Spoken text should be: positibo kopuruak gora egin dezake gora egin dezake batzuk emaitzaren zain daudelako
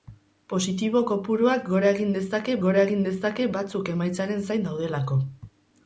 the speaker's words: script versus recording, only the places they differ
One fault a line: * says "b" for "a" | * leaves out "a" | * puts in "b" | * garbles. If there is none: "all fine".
all fine